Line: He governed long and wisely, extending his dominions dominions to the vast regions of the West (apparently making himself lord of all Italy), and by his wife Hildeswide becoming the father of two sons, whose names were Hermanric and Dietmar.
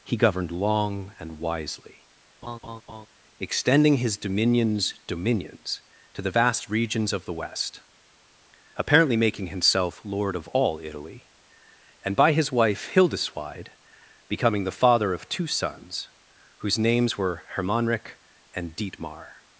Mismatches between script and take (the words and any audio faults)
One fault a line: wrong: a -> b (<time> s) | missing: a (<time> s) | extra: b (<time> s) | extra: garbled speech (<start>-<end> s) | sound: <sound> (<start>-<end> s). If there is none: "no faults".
sound: laugh (2.4-3.1 s)